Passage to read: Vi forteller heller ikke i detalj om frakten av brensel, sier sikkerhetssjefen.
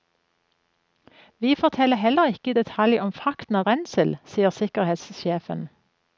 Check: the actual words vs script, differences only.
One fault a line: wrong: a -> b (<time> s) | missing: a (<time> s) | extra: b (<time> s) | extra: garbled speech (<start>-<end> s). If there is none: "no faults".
no faults